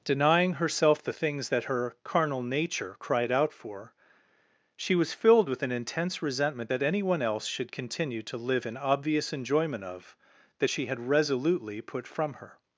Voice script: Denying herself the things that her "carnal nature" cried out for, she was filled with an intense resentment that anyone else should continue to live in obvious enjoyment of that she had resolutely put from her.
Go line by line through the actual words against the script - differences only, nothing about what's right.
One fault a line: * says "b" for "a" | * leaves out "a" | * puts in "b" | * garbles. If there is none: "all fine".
all fine